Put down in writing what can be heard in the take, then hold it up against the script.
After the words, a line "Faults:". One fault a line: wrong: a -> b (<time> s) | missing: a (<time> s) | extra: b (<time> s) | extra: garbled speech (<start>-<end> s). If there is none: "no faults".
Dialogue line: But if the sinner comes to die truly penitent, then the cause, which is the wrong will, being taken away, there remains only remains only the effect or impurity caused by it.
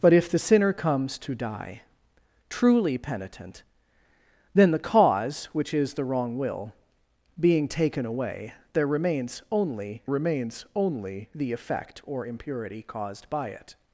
But if the sinner comes to die truly penitent, then the cause, which is the wrong will, being taken away, there remains only remains only the effect or impurity caused by it.
Faults:
no faults